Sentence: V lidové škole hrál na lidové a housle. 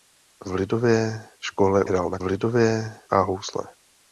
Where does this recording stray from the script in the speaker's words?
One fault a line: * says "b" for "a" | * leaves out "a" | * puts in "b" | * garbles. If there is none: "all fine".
all fine